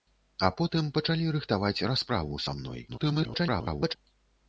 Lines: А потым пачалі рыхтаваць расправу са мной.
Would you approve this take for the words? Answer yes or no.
no